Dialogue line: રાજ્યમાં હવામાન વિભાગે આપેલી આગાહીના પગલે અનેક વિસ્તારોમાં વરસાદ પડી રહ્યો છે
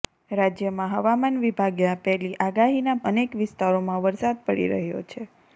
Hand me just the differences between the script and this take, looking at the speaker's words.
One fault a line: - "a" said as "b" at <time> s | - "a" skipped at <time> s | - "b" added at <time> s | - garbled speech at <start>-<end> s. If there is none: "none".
- "પગલે" skipped at 3.0 s